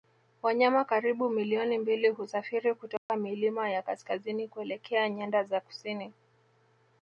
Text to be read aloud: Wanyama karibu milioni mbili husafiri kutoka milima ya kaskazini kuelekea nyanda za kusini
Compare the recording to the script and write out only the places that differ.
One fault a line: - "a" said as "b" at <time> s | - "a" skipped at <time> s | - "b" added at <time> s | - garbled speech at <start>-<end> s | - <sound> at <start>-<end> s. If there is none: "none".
- dropout at 3.0-3.1 s